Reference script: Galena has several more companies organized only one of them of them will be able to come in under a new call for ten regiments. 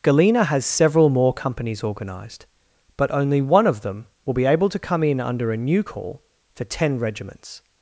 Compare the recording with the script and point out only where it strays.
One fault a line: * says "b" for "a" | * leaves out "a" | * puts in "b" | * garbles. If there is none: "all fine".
* puts in "but"
* leaves out "of them"